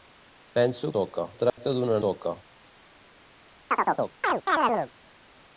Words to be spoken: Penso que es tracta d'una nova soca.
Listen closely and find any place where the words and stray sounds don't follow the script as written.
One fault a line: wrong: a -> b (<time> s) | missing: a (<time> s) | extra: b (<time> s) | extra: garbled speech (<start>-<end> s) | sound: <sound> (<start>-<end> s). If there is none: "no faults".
wrong: que -> soca (0.9 s)
sound: dropout (1.5-1.6 s)
missing: nova (2.0 s)
sound: chirp (3.7-4.9 s)